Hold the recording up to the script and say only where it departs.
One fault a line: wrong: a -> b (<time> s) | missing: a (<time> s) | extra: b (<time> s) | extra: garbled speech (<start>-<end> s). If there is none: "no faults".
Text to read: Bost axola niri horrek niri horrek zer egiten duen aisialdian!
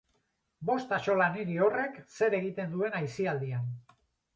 missing: niri horrek (2.0 s)